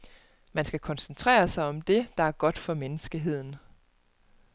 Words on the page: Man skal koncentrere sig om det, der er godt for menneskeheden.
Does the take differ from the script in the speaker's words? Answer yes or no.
no